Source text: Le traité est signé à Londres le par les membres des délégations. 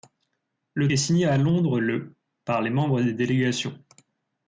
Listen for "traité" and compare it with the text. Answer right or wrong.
wrong